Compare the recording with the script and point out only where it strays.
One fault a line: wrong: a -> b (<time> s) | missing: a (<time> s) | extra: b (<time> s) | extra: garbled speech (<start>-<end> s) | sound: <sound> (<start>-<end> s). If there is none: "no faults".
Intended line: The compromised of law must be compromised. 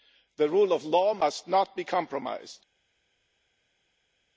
wrong: compromised -> rule (0.5 s)
extra: not (1.5 s)